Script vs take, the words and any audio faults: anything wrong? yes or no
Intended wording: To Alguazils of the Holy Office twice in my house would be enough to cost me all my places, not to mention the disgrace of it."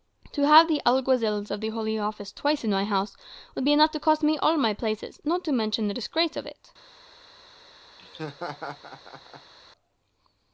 yes